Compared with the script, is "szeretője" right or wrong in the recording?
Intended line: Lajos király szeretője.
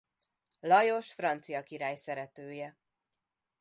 right